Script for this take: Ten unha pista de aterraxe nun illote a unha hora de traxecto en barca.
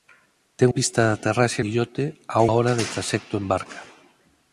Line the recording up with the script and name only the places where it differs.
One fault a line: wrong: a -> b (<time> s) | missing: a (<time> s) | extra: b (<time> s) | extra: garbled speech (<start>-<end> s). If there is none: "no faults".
missing: unha (0.7 s)
missing: nun (1.6 s)
missing: unha (2.4 s)